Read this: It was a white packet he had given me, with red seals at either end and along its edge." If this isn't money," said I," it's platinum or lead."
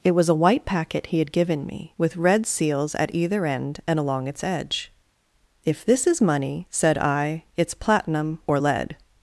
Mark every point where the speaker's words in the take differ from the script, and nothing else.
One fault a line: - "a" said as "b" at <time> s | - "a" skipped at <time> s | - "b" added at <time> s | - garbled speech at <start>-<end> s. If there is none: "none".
- "isn't" said as "is" at 6.1 s